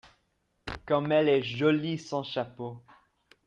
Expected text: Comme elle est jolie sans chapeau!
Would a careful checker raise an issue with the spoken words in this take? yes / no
no